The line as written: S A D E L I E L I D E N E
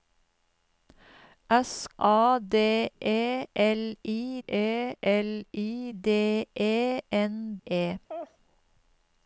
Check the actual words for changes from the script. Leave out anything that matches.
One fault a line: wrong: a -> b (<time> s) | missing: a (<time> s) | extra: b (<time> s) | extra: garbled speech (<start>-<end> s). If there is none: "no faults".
no faults